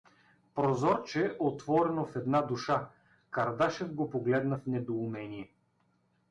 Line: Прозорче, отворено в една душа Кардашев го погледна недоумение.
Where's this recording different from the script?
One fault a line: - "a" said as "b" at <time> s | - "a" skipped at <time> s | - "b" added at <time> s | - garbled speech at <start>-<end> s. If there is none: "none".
- "в" added at 4.5 s